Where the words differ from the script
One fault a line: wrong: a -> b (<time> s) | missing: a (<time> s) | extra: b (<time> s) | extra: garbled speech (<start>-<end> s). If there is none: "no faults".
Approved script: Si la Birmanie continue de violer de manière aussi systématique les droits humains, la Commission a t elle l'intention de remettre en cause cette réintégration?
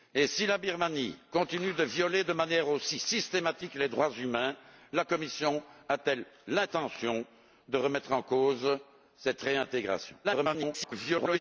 extra: garbled speech (10.2-11.4 s)